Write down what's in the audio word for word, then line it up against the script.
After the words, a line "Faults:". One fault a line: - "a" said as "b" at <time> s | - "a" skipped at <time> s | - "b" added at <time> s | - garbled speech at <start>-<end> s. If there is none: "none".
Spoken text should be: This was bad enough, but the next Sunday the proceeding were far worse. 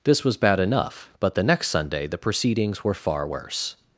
This was bad enough, but the next Sunday the proceedings were far worse.
Faults:
- "proceeding" said as "proceedings" at 2.2 s